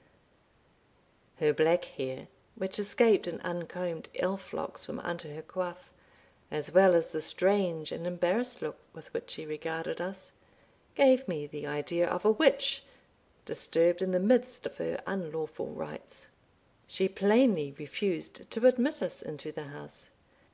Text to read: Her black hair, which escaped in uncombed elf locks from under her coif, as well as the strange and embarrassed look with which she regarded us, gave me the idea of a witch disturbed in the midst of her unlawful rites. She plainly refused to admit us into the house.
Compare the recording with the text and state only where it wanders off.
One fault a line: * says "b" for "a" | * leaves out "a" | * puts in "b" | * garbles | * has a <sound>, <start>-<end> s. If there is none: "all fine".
all fine